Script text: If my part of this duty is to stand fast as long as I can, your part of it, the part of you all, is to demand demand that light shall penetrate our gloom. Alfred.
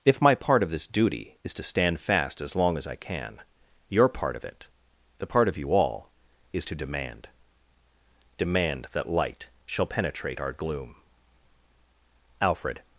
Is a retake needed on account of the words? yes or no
no